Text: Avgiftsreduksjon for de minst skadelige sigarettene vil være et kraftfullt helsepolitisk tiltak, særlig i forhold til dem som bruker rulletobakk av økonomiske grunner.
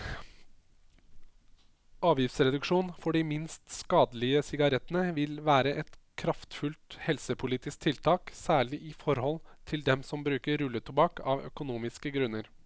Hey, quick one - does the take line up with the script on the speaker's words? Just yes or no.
yes